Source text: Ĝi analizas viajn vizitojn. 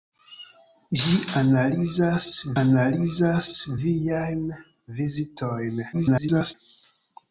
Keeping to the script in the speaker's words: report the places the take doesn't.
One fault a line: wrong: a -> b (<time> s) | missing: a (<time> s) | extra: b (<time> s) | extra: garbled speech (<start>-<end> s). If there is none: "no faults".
extra: analizas (2.6 s)
extra: garbled speech (5.9-6.5 s)